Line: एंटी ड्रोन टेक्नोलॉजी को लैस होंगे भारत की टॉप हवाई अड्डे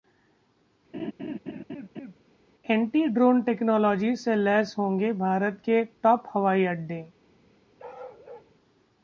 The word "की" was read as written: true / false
false